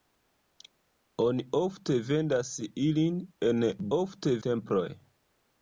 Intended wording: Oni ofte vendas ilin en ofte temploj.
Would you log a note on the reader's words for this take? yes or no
no